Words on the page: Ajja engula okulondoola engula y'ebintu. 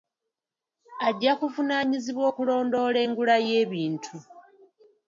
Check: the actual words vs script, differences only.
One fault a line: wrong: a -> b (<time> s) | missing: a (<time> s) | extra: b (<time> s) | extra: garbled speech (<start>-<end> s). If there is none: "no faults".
wrong: engula -> kuvunaanyizibwa (1.4 s)